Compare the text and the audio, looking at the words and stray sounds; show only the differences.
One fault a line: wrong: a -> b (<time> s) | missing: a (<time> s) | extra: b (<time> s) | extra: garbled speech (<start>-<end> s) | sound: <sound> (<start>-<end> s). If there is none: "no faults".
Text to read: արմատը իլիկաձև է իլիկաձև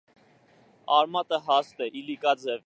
wrong: իլիկաձև -> հաստ (1.5 s)